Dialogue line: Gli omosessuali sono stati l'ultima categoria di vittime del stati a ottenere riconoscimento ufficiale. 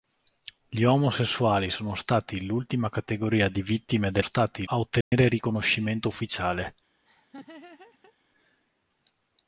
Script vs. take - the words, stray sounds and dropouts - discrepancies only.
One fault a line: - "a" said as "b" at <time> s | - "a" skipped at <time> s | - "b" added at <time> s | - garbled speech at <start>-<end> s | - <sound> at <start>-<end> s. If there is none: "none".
- dropout at 5.0-5.1 s
- laugh at 7.0-8.1 s